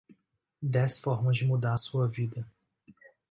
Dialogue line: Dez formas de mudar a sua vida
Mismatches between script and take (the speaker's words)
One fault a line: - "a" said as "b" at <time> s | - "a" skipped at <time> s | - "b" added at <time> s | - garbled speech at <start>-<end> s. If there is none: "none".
none